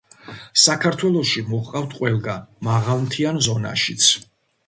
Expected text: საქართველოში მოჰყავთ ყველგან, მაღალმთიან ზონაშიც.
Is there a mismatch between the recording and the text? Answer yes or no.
no